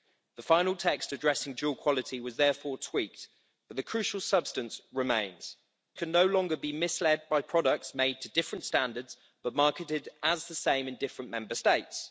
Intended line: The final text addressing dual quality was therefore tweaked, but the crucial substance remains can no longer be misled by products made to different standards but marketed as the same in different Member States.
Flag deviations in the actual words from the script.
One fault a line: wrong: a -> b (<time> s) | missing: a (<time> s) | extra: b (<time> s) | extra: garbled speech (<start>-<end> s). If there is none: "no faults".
no faults